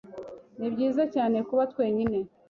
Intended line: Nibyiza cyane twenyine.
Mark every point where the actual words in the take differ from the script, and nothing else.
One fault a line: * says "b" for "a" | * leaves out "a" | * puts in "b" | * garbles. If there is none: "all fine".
* puts in "kuba"